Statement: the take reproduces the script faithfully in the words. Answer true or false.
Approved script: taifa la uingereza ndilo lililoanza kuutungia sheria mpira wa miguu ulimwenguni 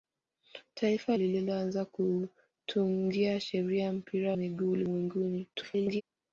false